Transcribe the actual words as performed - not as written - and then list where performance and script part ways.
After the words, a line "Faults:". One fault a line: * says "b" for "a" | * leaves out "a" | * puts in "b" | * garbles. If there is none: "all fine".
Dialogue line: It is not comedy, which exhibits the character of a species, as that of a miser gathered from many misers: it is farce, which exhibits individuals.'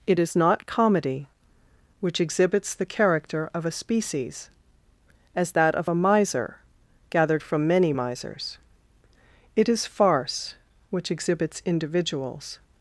It is not comedy, which exhibits the character of a species, as that of a miser gathered from many misers: it is farce, which exhibits individuals.'
Faults:
all fine